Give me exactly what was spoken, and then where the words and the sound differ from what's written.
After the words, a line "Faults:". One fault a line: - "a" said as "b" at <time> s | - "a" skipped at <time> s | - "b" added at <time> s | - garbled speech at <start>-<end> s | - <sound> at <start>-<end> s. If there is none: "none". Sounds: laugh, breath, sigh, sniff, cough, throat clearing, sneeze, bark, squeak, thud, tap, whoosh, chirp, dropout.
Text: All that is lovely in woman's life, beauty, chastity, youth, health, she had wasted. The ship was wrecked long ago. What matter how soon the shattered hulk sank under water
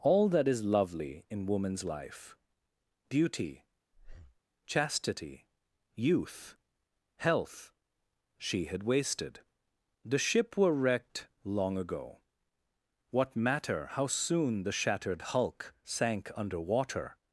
All that is lovely in woman's life, beauty, chastity, youth, health, she had wasted. The ship were wrecked long ago. What matter how soon the shattered hulk sank under water
Faults:
- breath at 3.9-4.4 s
- "was" said as "were" at 10.6 s